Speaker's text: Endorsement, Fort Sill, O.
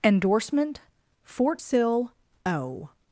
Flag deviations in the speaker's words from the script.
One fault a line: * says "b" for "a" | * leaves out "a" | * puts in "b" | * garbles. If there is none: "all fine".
all fine